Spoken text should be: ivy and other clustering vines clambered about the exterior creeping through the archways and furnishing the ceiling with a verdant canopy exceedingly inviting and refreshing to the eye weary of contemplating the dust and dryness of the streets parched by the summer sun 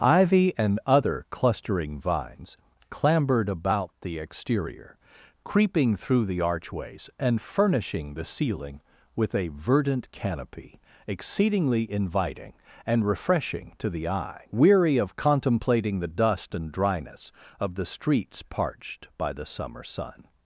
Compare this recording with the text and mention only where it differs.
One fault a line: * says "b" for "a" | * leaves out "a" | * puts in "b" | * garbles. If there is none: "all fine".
all fine